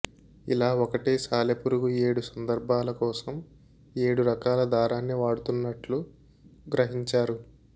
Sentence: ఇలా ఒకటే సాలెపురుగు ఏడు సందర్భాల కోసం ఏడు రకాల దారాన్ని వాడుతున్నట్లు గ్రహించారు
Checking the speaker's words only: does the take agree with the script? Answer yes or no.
yes